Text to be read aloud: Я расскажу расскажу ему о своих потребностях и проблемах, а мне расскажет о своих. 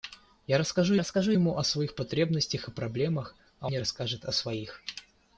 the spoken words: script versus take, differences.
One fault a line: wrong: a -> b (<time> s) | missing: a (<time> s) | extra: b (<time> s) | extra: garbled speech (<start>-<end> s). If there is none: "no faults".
no faults